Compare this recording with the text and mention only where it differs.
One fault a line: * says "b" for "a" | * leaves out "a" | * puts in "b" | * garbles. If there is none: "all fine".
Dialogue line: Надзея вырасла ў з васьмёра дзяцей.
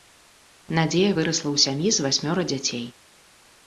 * puts in "сям'і"